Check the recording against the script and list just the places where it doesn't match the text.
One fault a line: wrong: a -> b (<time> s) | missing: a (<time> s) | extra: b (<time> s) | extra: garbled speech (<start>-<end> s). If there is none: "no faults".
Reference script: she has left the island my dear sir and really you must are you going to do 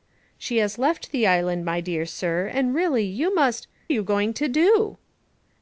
no faults